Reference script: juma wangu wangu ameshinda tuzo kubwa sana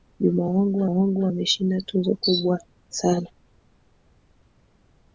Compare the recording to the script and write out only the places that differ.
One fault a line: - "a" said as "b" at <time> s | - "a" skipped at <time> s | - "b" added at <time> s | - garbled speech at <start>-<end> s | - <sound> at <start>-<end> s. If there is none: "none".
none